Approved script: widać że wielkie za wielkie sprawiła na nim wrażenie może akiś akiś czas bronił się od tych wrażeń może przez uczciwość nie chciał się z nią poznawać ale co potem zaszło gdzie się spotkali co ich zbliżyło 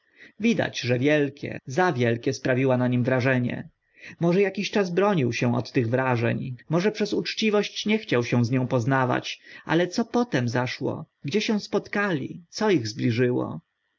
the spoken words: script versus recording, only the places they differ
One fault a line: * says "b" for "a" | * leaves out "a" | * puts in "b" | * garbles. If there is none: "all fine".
* leaves out "akiś"